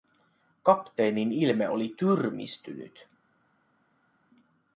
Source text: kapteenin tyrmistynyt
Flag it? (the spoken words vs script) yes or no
yes